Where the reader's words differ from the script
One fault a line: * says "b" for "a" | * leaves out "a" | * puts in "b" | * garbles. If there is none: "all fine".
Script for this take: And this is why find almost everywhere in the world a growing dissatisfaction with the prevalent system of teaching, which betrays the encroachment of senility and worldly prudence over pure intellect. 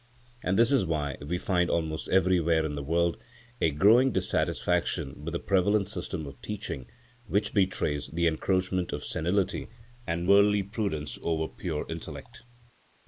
* puts in "we"